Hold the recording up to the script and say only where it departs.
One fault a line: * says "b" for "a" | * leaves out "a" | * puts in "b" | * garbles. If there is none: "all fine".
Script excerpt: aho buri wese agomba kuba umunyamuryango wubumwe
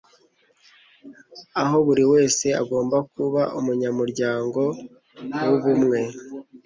all fine